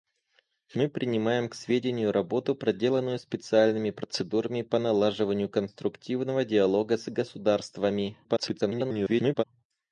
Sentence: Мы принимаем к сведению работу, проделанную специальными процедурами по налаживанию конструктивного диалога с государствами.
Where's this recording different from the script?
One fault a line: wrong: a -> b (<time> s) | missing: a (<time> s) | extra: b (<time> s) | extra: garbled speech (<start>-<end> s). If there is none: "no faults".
extra: garbled speech (8.2-9.4 s)